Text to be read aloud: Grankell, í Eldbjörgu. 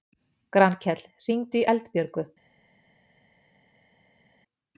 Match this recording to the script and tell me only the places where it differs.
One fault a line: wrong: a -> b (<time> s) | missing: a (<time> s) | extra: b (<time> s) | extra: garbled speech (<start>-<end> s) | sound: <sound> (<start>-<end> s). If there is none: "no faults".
extra: hringdu (1.3 s)